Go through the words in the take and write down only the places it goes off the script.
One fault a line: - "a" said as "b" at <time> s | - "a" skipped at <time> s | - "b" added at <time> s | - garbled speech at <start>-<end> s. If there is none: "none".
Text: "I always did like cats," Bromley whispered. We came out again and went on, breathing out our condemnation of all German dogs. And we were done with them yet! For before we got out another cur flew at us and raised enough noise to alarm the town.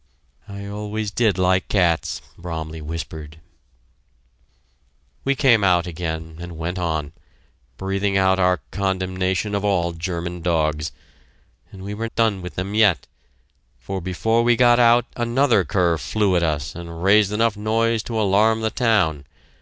none